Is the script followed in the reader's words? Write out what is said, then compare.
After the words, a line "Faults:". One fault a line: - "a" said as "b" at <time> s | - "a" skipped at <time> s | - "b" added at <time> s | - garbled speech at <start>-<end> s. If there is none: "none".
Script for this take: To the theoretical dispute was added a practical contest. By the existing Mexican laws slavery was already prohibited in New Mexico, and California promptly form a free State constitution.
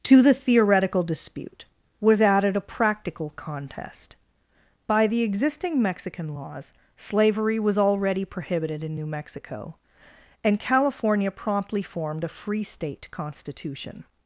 To the theoretical dispute was added a practical contest. By the existing Mexican laws slavery was already prohibited in New Mexico, and California promptly formed a free State constitution.
Faults:
- "form" said as "formed" at 11.8 s